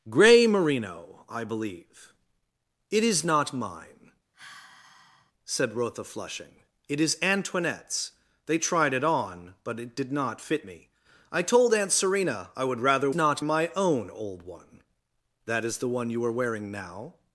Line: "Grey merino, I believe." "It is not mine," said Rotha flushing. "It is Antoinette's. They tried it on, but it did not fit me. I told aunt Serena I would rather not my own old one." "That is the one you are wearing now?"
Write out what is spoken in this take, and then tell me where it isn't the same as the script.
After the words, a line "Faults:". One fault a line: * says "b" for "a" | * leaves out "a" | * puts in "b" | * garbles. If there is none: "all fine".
"Grey merino, I believe." "It is not mine," said Rotha flushing. "It is Antoinette's. They tried it on, but it did not fit me. I told aunt Serena I would rather not my own old one." "That is the one you are wearing now?"
Faults:
all fine